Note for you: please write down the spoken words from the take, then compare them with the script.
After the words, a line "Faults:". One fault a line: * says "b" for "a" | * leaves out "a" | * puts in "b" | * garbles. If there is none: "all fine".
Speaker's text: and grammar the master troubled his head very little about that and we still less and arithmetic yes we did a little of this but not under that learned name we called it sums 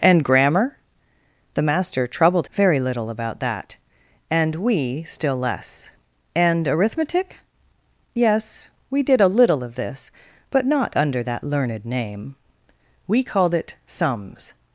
and grammar the master troubled very little about that and we still less and arithmetic yes we did a little of this but not under that learned name we called it sums
Faults:
* leaves out "his head"